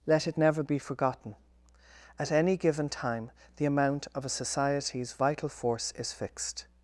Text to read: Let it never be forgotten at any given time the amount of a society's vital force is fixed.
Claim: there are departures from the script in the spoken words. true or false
false